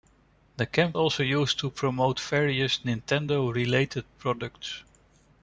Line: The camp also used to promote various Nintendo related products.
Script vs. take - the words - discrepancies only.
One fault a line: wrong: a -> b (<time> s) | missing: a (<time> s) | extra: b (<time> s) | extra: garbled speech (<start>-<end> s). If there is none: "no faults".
no faults